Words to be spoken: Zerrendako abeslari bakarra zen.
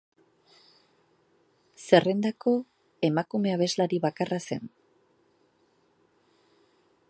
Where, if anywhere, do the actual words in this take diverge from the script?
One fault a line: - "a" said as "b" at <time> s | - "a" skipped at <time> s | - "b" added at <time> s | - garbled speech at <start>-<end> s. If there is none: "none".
- "emakume" added at 3.1 s